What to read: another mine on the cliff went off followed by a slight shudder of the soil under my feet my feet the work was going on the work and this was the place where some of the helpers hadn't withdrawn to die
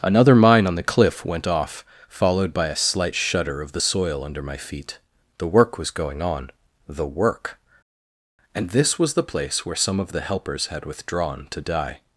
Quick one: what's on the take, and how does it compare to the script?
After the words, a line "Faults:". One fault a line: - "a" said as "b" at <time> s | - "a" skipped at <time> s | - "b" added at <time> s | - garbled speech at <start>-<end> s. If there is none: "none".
another mine on the cliff went off followed by a slight shudder of the soil under my feet the work was going on the work and this was the place where some of the helpers had withdrawn to die
Faults:
- "my feet" skipped at 5.0 s
- "hadn't" said as "had" at 10.7 s